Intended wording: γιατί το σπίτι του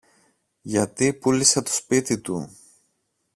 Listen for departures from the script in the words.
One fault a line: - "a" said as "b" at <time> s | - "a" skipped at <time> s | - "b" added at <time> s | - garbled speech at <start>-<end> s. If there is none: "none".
- "πούλησε" added at 1.1 s